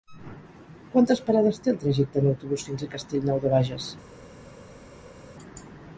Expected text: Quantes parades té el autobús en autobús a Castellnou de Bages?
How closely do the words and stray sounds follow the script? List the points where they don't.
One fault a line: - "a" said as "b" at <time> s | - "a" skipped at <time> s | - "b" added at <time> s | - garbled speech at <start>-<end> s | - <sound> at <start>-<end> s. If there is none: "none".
- "autobús" said as "trajecte" at 1.8 s
- "fins" added at 2.7 s